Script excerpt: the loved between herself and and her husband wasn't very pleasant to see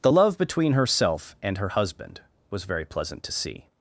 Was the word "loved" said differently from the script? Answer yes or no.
yes